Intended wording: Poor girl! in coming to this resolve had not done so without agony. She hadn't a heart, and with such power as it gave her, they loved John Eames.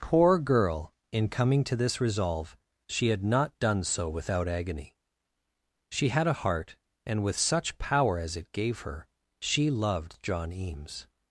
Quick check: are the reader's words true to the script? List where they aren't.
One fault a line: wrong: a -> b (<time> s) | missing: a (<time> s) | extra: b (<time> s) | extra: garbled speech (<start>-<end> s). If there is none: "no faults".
extra: she (2.9 s)
wrong: hadn't -> had (6.1 s)
wrong: they -> she (9.4 s)